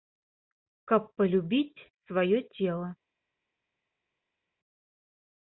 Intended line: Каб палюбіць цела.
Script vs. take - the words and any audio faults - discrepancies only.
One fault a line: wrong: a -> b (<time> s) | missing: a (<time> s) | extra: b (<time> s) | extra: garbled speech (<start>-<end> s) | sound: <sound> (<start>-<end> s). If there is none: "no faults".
extra: сваё (2.1 s)